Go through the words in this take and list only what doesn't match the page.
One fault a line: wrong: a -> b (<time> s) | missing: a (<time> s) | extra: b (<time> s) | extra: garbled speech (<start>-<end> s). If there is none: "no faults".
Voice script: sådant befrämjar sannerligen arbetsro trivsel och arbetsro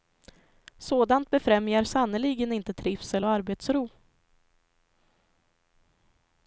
wrong: arbetsro -> inte (2.5 s)